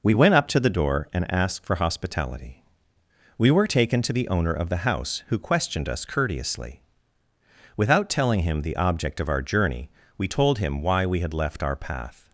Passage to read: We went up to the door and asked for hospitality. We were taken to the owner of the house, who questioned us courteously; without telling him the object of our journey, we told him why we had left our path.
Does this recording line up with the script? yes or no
yes